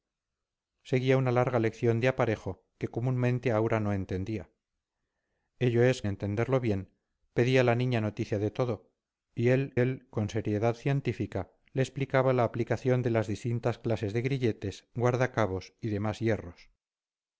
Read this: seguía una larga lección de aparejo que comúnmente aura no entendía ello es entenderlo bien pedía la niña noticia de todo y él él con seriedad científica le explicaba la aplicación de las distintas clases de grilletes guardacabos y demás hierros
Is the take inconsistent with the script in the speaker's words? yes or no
no